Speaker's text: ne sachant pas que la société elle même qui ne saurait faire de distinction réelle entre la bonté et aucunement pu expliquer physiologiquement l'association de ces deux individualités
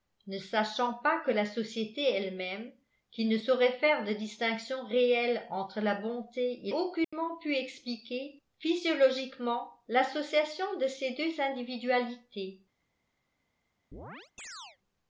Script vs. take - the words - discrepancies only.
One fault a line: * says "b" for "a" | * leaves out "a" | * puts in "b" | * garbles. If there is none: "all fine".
all fine